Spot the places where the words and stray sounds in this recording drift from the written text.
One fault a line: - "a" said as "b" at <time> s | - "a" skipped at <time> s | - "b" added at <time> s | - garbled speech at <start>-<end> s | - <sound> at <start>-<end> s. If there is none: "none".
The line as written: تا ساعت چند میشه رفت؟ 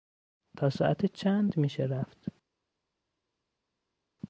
none